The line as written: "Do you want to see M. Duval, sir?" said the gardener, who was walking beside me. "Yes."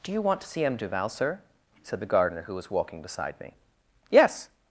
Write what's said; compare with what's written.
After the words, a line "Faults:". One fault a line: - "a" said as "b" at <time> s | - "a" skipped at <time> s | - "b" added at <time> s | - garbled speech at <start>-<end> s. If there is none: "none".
"Do you want to see M. Duval, sir?" said the gardener, who was walking beside me. "Yes."
Faults:
none